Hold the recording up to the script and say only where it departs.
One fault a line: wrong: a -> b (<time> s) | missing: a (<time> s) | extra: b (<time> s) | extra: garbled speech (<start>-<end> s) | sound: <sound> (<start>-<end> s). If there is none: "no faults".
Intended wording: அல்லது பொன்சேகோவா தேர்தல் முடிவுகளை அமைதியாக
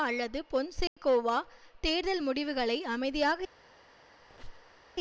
sound: dropout (0.9-1.0 s)
sound: squeak (4.2-4.8 s)